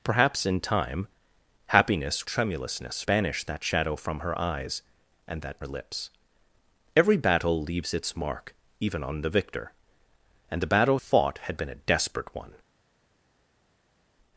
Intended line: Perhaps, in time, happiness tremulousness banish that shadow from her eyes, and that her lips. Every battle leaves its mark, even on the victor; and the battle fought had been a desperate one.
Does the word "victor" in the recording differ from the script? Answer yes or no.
no